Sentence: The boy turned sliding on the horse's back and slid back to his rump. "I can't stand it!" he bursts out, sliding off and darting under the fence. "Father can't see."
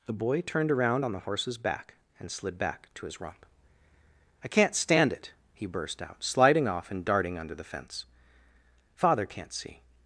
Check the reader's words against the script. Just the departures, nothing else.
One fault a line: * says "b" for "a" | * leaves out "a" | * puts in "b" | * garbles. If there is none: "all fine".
* says "around" for "sliding"
* says "burst" for "bursts"